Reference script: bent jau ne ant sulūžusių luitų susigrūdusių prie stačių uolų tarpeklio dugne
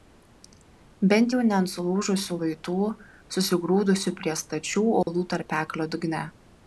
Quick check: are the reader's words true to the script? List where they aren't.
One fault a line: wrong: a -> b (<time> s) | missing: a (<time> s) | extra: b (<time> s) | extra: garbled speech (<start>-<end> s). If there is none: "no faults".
no faults